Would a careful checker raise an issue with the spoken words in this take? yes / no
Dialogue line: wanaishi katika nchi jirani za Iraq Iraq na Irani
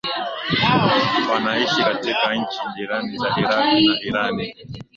yes